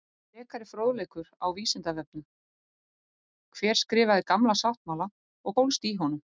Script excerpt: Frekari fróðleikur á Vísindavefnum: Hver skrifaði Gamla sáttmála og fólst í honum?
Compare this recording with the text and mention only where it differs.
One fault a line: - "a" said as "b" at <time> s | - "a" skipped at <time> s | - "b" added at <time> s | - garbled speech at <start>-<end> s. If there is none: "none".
none